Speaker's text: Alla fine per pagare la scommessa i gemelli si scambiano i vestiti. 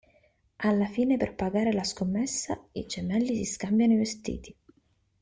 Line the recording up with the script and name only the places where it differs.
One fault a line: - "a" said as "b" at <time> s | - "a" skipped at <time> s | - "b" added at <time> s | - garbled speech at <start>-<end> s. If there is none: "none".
none